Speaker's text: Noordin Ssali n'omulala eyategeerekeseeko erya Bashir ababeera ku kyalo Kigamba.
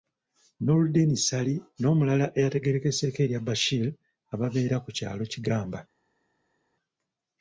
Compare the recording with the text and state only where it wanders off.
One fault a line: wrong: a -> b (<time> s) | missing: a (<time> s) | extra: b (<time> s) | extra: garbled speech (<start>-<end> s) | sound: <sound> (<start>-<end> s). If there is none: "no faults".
no faults